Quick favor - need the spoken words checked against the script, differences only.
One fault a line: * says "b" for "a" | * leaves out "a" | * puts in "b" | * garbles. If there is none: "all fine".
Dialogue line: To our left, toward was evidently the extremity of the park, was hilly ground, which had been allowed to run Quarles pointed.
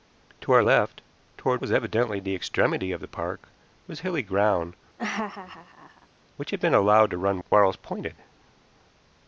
all fine